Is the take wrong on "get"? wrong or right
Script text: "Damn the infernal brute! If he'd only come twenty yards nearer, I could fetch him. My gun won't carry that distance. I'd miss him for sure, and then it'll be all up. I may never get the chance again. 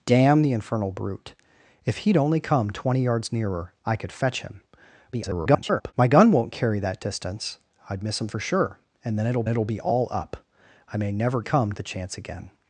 wrong